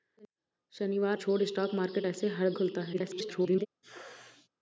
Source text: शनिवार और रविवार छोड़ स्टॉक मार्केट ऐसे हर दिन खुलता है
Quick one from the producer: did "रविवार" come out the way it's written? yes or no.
no